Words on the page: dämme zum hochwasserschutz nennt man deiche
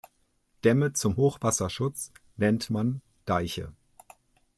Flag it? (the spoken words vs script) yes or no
no